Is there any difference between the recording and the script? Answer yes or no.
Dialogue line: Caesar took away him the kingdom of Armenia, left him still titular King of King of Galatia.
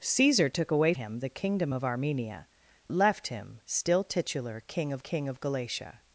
no